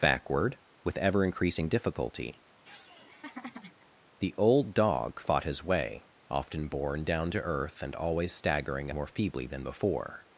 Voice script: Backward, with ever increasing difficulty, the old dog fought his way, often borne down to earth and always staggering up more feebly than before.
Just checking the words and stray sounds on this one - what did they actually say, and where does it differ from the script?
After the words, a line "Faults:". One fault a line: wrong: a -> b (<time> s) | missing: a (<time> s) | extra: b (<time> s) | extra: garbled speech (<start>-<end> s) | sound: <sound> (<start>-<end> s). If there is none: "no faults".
Backward, with ever increasing difficulty, the old dog fought his way, often borne down to earth and always staggering more feebly than before.
Faults:
sound: laugh (2.6-3.9 s)
missing: up (8.9 s)